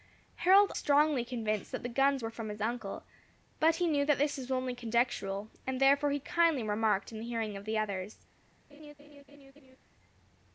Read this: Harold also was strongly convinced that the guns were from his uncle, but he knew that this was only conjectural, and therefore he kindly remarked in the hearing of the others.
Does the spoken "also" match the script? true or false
false